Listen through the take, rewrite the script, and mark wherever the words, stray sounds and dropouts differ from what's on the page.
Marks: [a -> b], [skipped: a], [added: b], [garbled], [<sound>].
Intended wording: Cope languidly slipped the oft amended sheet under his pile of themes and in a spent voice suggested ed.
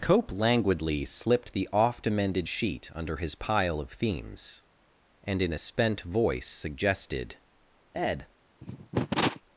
Cope languidly slipped the oft amended sheet under his pile of themes and in a spent voice suggested ed. [cough]